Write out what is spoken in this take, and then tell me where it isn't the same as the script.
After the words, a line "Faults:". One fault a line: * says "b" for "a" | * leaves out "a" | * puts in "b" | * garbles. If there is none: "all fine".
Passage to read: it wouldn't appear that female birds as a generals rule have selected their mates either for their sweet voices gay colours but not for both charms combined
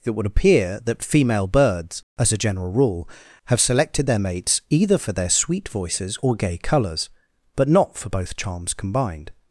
it would appear that female birds as a general rule have selected their mates either for their sweet voices or gay colours but not for both charms combined
Faults:
* says "would" for "wouldn't"
* says "general" for "generals"
* puts in "or"